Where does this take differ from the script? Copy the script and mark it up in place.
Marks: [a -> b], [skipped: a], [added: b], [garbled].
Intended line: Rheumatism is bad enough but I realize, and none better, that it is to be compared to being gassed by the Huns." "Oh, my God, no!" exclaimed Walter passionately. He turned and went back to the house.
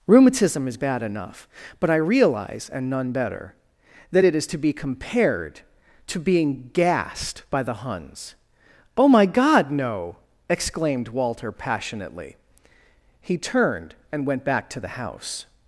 Rheumatism is bad enough but I realize, and none better, that it is to be compared to being gassed by the Huns." "Oh, my God, no!" exclaimed Walter passionately. He turned and went back to the house.